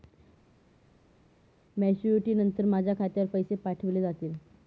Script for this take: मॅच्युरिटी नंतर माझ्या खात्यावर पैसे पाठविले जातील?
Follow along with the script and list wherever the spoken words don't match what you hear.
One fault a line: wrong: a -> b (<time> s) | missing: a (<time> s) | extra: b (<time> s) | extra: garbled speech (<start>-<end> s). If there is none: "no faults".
no faults